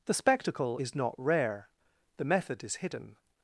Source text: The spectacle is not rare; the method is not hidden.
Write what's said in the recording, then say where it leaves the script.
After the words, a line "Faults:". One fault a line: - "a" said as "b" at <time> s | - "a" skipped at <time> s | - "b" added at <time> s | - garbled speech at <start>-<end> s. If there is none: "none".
The spectacle is not rare; the method is hidden.
Faults:
- "not" skipped at 2.8 s